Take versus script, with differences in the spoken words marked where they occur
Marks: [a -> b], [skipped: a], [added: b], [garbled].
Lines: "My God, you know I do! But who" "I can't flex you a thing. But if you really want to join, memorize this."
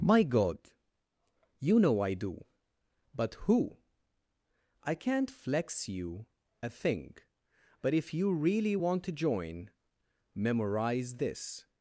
"My God, you know I do! But who" "I can't flex you a thing. But if you really want to join, memorize this."